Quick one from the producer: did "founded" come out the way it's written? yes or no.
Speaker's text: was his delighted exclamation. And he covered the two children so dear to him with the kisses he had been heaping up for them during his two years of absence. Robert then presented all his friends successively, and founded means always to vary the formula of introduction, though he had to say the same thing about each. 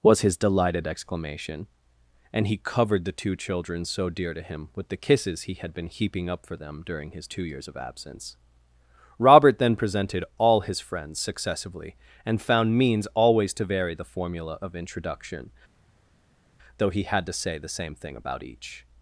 no